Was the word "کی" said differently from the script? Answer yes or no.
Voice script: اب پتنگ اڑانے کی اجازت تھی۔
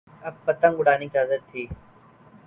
yes